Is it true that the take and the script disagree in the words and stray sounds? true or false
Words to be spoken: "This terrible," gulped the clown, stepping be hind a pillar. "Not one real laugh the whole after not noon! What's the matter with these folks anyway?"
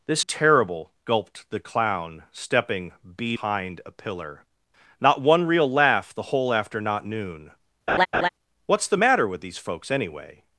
true